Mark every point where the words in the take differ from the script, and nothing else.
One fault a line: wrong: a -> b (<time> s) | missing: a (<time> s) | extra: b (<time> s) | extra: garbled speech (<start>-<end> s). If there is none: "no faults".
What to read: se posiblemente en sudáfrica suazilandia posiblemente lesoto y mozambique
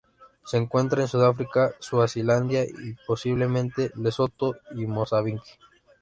wrong: posiblemente -> encuentra (0.6 s)
extra: y (2.6 s)